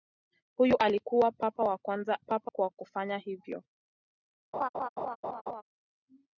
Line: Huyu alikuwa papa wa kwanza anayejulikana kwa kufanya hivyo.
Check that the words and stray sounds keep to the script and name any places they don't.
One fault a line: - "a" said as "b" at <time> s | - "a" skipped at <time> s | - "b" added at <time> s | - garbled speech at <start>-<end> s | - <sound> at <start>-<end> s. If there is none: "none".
- "anayejulikana" said as "papa" at 2.2 s
- laugh at 4.5-5.6 s